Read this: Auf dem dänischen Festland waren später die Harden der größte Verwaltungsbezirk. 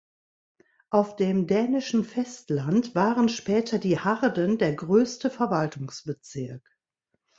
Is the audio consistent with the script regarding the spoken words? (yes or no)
yes